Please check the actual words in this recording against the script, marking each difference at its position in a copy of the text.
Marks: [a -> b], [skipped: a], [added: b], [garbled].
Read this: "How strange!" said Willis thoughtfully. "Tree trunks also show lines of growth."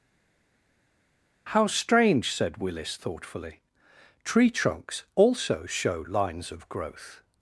"How strange!" said Willis thoughtfully. "Tree trunks also show lines of growth."